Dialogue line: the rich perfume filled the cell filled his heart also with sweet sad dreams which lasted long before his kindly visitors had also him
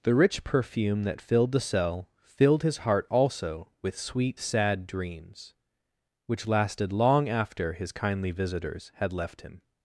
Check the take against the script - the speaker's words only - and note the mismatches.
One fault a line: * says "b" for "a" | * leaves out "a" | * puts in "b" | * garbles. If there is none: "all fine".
* puts in "that"
* says "after" for "before"
* says "left" for "also"